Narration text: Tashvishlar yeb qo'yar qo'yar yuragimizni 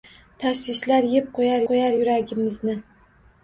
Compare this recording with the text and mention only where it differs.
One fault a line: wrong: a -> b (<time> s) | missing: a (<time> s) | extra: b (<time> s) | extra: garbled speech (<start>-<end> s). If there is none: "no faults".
no faults